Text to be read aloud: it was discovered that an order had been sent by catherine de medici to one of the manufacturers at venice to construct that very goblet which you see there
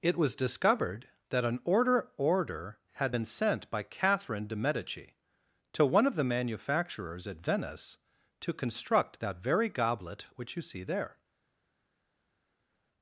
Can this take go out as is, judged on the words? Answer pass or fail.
fail